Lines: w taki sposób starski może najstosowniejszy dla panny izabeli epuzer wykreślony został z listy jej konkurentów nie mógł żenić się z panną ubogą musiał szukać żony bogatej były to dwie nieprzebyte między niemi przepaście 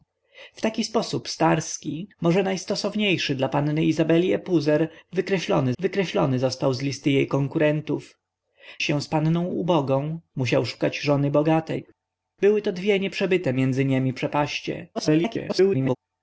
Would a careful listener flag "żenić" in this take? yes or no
yes